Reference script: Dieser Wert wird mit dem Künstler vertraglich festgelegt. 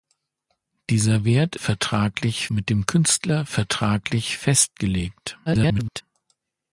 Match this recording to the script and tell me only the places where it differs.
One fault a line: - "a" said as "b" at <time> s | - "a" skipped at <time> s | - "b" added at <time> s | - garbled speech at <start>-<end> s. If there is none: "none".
- "wird" said as "vertraglich" at 1.6 s
- garbled speech at 5.5-6.0 s